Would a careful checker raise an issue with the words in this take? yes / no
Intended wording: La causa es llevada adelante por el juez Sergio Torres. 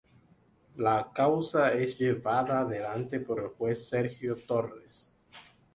no